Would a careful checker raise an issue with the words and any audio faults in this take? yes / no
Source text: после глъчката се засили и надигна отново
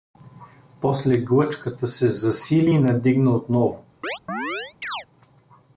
yes